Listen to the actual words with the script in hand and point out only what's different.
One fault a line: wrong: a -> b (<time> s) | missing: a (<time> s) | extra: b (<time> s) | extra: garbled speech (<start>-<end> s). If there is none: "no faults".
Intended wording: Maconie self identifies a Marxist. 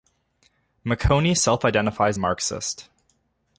no faults